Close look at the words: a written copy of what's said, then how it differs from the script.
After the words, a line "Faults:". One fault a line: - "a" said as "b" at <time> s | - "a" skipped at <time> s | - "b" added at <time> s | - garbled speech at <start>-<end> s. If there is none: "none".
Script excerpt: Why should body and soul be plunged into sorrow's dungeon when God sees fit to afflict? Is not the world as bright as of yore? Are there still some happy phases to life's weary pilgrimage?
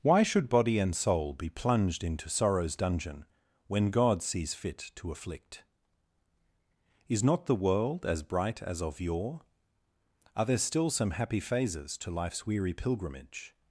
Why should body and soul be plunged into sorrow's dungeon when God sees fit to afflict? Is not the world as bright as of yore? Are there still some happy phases to life's weary pilgrimage?
Faults:
none